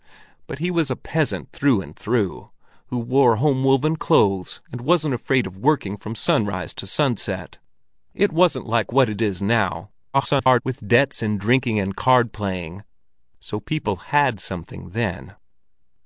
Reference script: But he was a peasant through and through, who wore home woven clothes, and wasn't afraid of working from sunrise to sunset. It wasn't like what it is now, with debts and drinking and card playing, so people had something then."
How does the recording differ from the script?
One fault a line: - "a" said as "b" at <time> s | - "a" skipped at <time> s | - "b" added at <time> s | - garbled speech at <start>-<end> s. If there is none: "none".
- garbled speech at 10.1-10.6 s